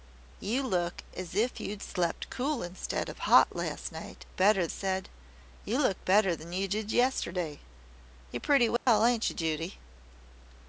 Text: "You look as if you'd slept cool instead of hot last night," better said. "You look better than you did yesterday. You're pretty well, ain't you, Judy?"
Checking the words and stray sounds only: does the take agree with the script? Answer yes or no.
no